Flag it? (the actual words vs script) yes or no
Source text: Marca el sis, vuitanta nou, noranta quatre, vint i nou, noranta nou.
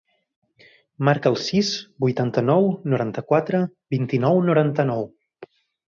no